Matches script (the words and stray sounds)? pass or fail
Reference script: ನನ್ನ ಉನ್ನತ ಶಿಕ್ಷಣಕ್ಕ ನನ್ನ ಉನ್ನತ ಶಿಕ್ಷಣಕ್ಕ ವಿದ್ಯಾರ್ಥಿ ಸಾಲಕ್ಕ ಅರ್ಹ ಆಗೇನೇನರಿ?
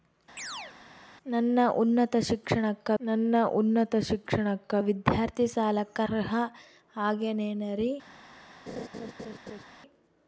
fail